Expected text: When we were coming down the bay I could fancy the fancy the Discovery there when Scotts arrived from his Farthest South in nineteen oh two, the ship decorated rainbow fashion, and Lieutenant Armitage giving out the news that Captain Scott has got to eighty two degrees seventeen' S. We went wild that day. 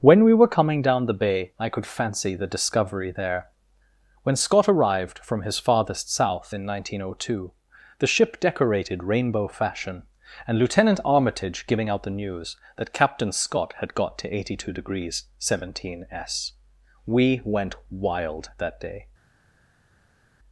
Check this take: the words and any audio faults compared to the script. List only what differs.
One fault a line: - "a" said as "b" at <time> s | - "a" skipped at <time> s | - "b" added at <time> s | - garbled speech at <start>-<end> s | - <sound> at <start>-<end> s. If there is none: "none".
- "fancy the" skipped at 2.5 s
- "Scotts" said as "Scott" at 4.3 s
- "has" said as "had" at 13.8 s